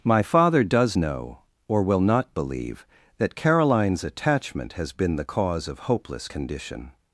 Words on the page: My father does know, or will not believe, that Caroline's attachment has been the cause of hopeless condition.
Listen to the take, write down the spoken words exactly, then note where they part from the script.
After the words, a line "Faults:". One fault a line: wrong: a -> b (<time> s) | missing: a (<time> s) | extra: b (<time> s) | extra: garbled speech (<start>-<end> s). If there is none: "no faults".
My father does know, or will not believe, that Caroline's attachment has been the cause of hopeless condition.
Faults:
no faults